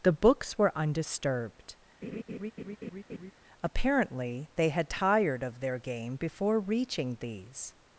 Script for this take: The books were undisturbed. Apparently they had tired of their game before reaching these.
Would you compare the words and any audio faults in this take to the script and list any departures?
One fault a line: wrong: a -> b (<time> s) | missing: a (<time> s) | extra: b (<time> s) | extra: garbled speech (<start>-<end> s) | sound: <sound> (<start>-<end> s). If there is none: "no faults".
sound: laugh (2.0-3.3 s)